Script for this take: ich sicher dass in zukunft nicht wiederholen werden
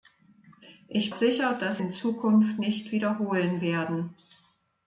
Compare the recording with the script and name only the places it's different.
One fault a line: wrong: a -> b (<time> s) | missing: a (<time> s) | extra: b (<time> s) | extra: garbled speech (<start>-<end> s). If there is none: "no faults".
no faults